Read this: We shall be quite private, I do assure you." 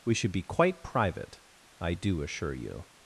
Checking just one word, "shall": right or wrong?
wrong